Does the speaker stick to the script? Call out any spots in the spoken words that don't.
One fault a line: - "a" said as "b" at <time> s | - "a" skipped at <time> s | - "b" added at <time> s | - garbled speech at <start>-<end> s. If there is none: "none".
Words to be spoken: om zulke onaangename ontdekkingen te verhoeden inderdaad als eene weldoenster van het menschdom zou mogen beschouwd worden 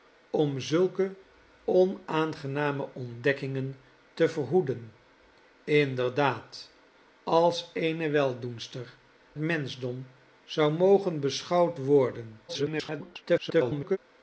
- "van het" skipped at 8.9 s
- garbled speech at 12.5-14.0 s